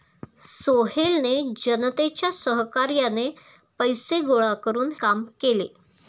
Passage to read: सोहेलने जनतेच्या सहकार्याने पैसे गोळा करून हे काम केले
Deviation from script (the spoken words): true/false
true